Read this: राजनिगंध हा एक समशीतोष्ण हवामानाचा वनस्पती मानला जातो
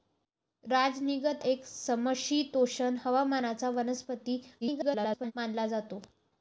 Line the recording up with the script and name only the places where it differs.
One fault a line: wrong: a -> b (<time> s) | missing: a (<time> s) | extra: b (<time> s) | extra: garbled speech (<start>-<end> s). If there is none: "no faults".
missing: हा (1.4 s)
extra: garbled speech (4.6-5.3 s)